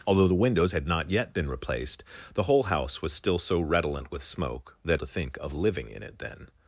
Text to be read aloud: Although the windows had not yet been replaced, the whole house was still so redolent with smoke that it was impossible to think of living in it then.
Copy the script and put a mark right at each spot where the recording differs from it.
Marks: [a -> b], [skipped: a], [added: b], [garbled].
Although the windows had not yet been replaced, the whole house was still so redolent with smoke that [skipped: it was impossible] to think of living in it then.